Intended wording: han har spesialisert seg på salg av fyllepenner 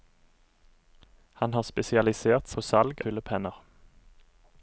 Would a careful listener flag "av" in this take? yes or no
yes